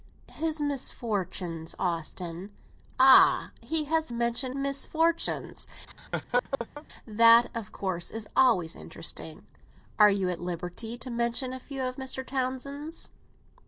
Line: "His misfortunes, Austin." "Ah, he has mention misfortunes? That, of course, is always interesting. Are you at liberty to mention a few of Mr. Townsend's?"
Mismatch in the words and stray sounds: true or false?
true